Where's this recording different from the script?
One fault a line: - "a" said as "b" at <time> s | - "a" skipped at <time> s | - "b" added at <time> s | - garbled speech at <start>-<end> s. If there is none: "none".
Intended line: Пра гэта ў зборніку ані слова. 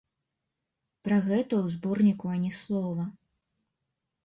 none